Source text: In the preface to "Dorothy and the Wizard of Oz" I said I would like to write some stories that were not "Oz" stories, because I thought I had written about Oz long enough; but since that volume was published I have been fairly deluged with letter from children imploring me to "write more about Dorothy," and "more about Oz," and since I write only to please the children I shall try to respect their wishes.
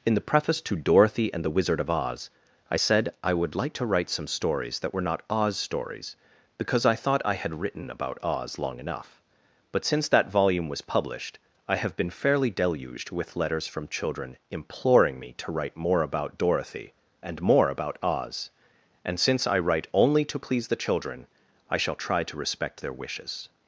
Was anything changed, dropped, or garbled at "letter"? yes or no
yes